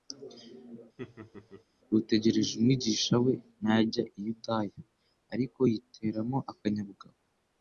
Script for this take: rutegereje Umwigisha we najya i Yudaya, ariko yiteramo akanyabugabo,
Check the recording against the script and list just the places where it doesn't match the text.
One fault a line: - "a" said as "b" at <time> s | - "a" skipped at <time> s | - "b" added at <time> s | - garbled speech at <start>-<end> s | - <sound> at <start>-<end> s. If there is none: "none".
- laugh at 1.0-1.6 s